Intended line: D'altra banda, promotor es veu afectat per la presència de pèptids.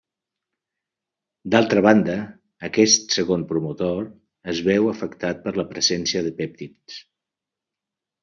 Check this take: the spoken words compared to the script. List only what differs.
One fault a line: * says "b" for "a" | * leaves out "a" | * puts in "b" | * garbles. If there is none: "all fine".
* puts in "aquest segon"